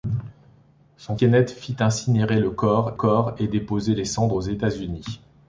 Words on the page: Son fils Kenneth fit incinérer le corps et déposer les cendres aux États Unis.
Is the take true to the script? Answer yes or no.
no